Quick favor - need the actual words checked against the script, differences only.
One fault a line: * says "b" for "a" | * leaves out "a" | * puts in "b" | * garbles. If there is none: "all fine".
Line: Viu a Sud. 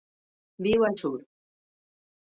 all fine